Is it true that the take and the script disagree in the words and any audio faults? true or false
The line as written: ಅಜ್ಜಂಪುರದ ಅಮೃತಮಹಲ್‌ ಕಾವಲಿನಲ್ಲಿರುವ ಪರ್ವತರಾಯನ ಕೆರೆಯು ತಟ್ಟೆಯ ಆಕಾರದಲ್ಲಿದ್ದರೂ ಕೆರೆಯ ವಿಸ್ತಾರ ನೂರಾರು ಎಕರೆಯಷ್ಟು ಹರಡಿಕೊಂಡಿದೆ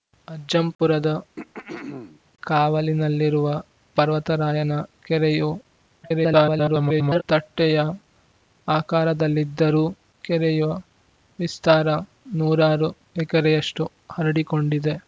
true